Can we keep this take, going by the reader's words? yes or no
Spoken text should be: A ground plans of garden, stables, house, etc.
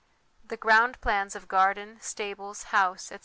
no